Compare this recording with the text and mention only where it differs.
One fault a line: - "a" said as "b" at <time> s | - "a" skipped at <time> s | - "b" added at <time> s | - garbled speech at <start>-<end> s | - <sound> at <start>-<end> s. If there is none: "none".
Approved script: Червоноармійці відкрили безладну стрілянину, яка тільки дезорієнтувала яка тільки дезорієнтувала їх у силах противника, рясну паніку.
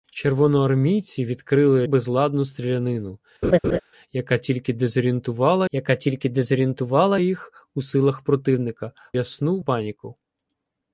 - laugh at 3.4-3.8 s